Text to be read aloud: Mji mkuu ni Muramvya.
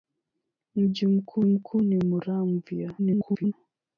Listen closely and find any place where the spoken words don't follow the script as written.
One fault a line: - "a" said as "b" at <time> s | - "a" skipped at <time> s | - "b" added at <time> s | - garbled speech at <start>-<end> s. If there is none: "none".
- "mkuu" added at 1.4 s
- garbled speech at 3.0-3.5 s